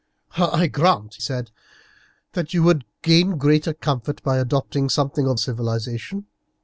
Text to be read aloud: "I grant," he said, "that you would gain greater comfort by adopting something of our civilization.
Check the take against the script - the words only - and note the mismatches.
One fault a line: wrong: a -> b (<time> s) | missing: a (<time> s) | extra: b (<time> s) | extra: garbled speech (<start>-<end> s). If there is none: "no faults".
missing: he (1.2 s)
missing: our (5.4 s)